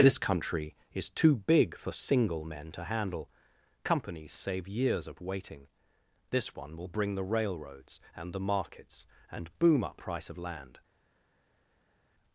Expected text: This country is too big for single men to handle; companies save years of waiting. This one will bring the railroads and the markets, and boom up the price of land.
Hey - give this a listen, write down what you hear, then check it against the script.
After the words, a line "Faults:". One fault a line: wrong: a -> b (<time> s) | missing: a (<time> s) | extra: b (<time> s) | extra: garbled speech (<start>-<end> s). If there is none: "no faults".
This country is too big for single men to handle; companies save years of waiting. This one will bring the railroads and the markets, and boom up price of land.
Faults:
missing: the (10.0 s)